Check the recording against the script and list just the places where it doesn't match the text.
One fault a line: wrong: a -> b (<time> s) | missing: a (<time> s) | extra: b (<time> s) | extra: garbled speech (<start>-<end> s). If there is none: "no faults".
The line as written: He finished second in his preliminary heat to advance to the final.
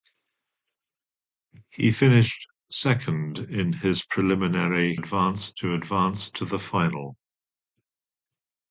wrong: heat -> advance (5.0 s)